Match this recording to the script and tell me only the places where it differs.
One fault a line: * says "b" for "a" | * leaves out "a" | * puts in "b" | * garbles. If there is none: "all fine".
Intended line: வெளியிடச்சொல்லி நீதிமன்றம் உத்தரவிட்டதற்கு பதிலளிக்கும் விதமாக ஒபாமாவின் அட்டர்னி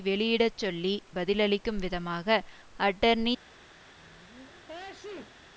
* leaves out "நீதிமன்றம் உத்தரவிட்டதற்கு"
* leaves out "ஒபாமாவின்"